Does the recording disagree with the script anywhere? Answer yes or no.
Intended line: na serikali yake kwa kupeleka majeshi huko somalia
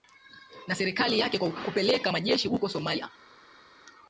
no